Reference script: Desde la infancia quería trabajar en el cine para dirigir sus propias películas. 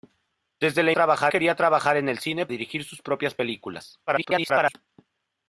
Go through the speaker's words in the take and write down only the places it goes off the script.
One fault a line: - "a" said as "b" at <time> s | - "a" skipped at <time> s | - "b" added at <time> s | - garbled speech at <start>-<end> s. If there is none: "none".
- "infancia" said as "trabajar" at 0.9 s
- "para" skipped at 2.5 s
- garbled speech at 4.1-4.8 s